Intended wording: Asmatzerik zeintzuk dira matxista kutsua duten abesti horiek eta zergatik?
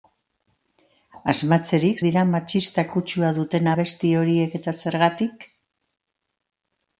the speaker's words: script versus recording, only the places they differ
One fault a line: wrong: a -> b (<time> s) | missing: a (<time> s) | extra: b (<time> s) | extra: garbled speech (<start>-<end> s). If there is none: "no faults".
missing: zeintzuk (2.0 s)